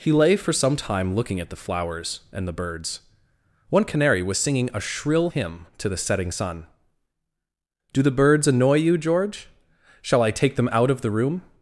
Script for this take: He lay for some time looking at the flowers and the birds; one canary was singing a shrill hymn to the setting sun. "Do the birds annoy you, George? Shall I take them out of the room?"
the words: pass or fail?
pass